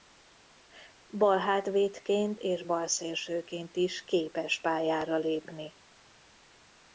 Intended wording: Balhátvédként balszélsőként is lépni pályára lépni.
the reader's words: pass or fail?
fail